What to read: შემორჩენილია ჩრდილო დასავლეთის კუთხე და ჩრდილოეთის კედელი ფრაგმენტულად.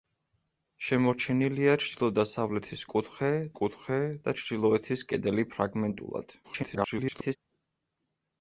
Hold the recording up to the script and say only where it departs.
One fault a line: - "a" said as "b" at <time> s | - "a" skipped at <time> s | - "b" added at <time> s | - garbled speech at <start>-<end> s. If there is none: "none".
- "კუთხე" added at 3.6 s
- garbled speech at 6.4-7.4 s